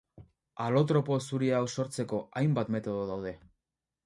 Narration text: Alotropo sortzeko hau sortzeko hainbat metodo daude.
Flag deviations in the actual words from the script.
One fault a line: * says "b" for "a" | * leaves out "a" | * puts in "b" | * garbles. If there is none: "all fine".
* says "zuri" for "sortzeko"